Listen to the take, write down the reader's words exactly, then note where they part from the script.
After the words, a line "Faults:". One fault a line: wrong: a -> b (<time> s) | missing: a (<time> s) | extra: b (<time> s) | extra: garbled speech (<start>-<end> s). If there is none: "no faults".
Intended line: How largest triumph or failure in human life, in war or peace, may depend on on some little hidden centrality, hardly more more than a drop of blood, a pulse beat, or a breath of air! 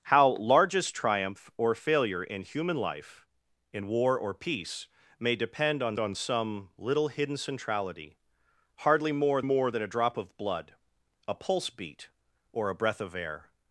How largest triumph or failure in human life, in war or peace, may depend on on some little hidden centrality, hardly more more than a drop of blood, a pulse beat, or a breath of air!
Faults:
no faults